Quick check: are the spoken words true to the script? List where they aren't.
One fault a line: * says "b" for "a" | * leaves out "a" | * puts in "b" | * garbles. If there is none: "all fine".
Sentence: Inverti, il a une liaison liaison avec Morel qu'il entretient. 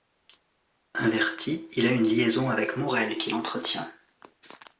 * leaves out "liaison"